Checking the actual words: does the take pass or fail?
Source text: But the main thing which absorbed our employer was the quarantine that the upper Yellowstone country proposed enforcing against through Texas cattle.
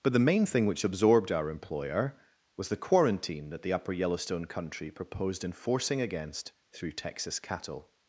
pass